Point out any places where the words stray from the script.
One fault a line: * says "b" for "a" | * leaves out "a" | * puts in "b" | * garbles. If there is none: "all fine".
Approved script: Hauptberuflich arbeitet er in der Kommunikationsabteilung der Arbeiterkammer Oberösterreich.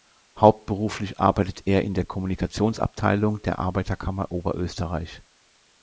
all fine